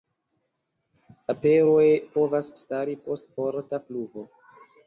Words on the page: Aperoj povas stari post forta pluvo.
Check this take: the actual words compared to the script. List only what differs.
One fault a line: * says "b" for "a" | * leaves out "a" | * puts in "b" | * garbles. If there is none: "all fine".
all fine